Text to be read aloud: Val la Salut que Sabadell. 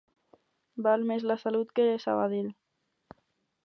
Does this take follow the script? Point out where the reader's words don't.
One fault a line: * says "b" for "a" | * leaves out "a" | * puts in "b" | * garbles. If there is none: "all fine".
* puts in "més"